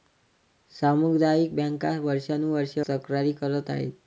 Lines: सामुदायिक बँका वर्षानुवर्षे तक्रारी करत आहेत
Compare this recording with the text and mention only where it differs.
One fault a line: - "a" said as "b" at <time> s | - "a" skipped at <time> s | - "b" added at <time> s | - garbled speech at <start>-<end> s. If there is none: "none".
none